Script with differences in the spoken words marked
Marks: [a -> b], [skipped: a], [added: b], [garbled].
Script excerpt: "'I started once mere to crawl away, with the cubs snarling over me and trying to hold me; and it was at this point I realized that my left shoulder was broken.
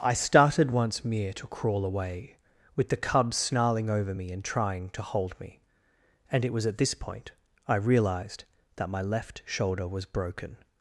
"'I started once mere to crawl away, with the cubs snarling over me and trying to hold me; and it was at this point I realized that my left shoulder was broken.